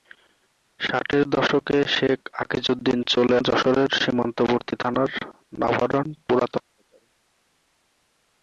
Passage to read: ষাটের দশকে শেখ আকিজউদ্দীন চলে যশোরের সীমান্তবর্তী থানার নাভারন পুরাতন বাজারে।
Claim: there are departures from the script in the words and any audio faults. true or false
false